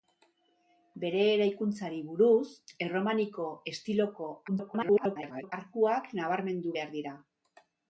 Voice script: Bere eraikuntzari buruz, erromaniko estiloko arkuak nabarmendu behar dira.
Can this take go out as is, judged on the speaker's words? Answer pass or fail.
fail